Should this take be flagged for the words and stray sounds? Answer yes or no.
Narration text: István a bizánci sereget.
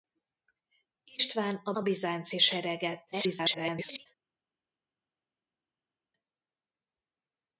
yes